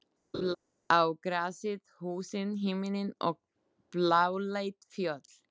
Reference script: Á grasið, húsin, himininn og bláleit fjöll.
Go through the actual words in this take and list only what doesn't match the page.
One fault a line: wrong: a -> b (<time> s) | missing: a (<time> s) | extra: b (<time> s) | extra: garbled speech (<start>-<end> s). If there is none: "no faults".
no faults